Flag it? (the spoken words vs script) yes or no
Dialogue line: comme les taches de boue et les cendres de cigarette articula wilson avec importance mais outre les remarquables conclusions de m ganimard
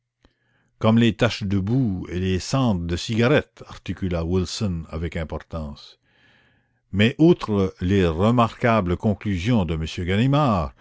no